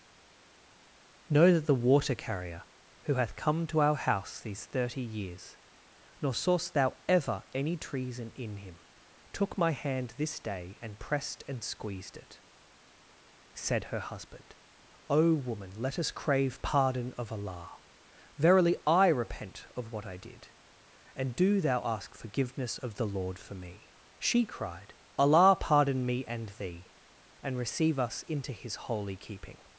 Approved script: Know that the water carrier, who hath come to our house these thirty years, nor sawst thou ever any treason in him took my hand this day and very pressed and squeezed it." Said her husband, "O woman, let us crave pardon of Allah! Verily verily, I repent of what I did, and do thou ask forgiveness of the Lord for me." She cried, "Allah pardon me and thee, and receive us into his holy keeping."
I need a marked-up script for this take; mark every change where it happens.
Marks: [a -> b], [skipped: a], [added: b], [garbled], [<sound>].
Know that the water carrier, who hath come to our house these thirty years, nor sawst thou ever any treason in him took my hand this day and [skipped: very] pressed and squeezed it." Said her husband, "O woman, let us crave pardon of Allah! Verily [skipped: verily,] I repent of what I did, and do thou ask forgiveness of the Lord for me." She cried, "Allah pardon me and thee, and receive us into his holy keeping."